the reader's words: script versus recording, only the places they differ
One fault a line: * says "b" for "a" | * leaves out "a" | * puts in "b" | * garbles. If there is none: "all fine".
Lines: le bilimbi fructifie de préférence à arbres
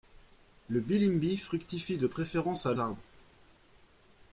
all fine